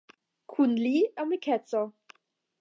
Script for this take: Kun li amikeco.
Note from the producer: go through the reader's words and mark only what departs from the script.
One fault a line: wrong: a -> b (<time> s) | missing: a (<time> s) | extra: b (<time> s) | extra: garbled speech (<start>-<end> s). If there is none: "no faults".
no faults